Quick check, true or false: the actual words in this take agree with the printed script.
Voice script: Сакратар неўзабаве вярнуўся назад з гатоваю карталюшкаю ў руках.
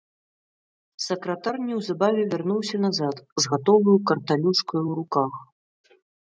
true